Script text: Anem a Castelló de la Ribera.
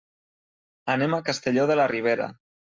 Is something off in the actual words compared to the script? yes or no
no